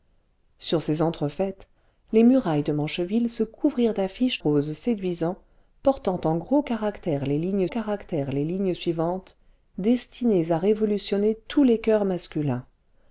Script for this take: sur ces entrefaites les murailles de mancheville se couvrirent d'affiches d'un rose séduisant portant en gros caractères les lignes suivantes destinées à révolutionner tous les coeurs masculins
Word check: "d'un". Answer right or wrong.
wrong